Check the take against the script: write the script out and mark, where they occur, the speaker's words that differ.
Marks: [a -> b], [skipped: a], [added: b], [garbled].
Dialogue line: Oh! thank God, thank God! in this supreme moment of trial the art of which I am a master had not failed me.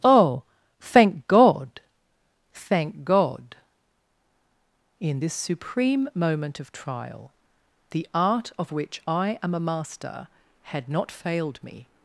Oh! thank God, thank God! in this supreme moment of trial the art of which I am a master had not failed me.